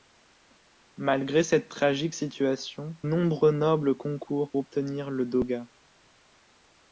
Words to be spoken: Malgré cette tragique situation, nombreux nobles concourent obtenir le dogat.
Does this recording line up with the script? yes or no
yes